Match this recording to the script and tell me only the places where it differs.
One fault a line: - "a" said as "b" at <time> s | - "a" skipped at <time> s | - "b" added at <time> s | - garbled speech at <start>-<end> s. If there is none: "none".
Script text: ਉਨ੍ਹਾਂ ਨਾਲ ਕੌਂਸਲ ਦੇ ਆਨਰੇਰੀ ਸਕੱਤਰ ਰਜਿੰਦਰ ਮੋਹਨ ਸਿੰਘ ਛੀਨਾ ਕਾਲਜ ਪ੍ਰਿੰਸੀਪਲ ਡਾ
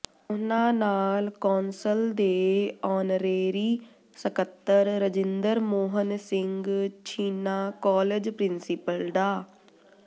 none